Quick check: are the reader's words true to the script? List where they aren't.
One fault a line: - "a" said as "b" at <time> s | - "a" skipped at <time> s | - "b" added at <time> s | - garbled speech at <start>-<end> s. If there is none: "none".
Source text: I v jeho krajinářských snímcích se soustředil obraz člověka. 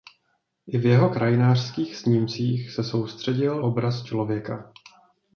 none